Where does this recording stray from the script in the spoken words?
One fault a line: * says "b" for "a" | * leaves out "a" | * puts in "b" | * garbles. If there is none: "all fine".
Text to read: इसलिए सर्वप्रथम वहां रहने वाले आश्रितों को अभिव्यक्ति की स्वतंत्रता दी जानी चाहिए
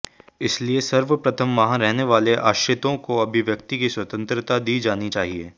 all fine